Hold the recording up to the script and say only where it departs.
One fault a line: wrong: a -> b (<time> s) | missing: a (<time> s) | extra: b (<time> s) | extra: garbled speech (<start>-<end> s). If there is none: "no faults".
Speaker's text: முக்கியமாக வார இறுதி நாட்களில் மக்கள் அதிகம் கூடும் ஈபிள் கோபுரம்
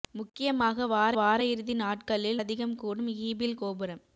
extra: வார (1.1 s)
missing: மக்கள் (2.4 s)